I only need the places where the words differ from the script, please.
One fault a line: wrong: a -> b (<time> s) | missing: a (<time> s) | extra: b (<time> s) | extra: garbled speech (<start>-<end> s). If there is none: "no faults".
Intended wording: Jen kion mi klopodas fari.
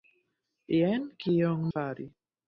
missing: mi klopodas (1.7 s)